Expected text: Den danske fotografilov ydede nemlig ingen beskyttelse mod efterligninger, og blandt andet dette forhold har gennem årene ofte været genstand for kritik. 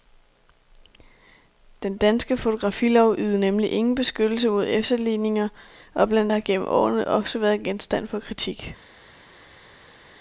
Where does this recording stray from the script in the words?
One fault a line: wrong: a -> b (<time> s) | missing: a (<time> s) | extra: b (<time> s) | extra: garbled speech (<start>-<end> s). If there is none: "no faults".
missing: andet dette forhold (6.3 s)